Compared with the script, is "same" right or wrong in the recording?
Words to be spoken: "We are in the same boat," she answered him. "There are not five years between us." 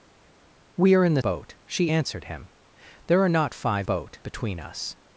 wrong